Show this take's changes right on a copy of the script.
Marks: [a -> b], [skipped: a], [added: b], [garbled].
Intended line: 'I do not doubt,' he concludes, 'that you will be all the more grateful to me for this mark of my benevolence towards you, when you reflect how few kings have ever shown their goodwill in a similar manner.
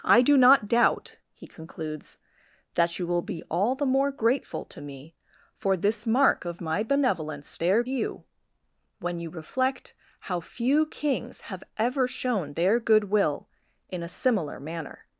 'I do not doubt,' he concludes, 'that you will be all the more grateful to me for this mark of my benevolence [towards -> their] you, when you reflect how few kings have ever shown their goodwill in a similar manner.